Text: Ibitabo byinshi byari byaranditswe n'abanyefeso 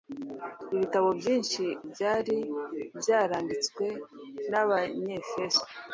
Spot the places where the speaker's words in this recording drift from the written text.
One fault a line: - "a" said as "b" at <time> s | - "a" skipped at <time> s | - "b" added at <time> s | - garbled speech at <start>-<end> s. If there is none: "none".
none